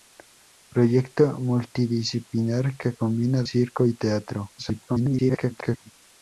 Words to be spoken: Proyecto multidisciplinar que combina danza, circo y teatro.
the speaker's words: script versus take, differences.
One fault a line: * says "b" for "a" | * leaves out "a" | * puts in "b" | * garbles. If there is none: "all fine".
* leaves out "danza"
* garbles